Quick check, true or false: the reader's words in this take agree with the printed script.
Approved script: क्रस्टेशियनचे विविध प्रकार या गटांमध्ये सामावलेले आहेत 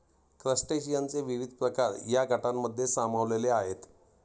true